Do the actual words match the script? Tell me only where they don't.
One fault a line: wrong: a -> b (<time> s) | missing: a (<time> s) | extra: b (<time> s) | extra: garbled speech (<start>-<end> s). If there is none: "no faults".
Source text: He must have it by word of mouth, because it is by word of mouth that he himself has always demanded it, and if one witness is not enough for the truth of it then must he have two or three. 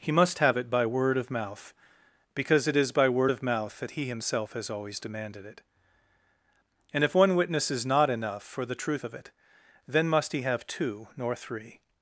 wrong: or -> nor (11.2 s)